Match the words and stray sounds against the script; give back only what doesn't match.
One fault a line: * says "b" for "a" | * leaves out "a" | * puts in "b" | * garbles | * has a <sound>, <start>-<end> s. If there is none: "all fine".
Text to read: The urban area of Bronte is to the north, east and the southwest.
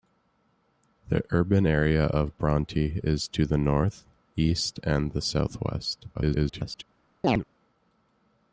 * garbles
* has a chirp, 7.2-7.4 s